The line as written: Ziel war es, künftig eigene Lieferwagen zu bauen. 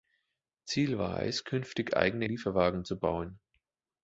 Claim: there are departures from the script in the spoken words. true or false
false